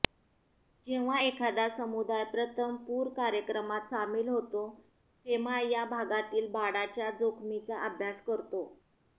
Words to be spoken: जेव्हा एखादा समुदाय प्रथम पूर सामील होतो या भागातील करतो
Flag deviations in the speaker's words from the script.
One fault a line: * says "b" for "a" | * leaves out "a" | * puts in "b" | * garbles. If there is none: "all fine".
* puts in "कार्यक्रमात"
* puts in "फेमा"
* puts in "बाडाच्या जोखमीचा अभ्यास"